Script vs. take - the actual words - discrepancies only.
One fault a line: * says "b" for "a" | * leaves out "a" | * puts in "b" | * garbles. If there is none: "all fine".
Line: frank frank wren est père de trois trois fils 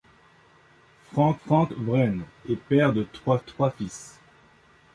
all fine